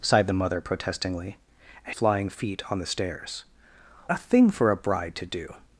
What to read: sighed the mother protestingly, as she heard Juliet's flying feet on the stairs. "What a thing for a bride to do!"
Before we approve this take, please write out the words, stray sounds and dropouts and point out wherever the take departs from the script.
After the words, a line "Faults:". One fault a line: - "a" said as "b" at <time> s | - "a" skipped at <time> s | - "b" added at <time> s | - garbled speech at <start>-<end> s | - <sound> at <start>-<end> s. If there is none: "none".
sighed the mother protestingly, as flying feet on the stairs. "A thing for a bride to do!"
Faults:
- "she heard Juliet's" skipped at 1.9 s
- "What" skipped at 3.4 s